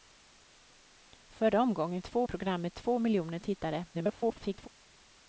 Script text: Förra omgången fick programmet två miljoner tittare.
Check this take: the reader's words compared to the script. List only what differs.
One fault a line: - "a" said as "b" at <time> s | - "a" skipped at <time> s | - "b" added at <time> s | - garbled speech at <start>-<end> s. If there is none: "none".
- "fick" said as "två" at 2.0 s
- garbled speech at 3.9-4.7 s